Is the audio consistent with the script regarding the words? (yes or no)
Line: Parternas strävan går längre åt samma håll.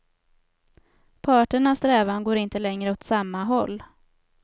no